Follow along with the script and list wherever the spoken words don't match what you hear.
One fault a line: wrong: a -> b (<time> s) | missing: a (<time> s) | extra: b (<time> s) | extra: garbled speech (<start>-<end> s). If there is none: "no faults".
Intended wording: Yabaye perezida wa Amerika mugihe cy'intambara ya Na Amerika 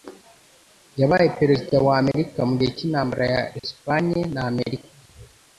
extra: Espagne (3.6 s)